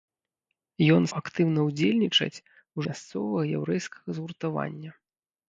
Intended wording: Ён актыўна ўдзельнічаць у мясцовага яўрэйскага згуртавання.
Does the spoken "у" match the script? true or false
true